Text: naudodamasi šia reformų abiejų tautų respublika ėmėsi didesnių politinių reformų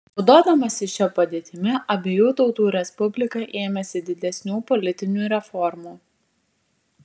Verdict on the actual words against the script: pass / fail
fail